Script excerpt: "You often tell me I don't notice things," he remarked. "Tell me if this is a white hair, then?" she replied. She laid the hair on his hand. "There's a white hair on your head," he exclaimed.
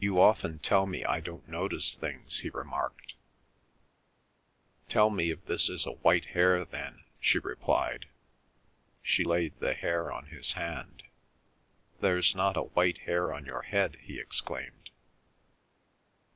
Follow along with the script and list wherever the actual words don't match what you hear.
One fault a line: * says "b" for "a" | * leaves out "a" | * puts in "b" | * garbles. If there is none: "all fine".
* puts in "not"